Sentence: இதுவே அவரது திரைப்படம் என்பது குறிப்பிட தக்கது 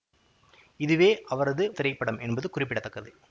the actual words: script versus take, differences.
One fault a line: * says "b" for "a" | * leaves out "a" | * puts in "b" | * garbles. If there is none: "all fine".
all fine